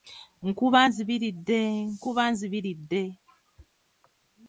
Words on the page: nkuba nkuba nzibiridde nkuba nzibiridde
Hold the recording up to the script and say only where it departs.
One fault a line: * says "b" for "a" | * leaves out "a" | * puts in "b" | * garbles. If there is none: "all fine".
* leaves out "nkuba"